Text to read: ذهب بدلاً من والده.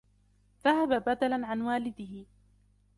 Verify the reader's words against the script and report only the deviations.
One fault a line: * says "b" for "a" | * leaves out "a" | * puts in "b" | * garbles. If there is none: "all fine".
* says "عن" for "من"